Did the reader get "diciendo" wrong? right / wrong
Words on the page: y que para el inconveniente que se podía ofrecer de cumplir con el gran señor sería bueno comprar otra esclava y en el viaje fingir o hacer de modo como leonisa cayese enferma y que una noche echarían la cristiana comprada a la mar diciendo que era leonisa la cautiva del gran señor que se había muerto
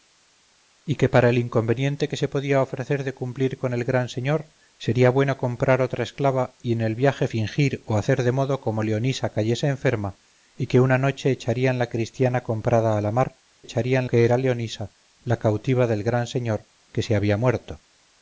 wrong